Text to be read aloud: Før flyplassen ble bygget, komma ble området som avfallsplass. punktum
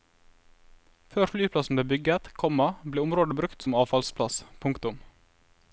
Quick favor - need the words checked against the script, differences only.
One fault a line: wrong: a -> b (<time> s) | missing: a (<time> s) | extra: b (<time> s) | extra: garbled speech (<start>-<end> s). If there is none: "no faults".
extra: brukt (3.4 s)